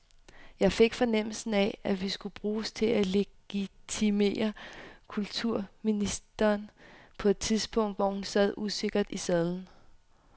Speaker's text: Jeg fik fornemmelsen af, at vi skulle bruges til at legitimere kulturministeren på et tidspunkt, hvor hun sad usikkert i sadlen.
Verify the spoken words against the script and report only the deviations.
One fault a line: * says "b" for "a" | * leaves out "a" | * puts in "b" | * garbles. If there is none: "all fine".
all fine